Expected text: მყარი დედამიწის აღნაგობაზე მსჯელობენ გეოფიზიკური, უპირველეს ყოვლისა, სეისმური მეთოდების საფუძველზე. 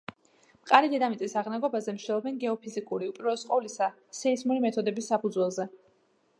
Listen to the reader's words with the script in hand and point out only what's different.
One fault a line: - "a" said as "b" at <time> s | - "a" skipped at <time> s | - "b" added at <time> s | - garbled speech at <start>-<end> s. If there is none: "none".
none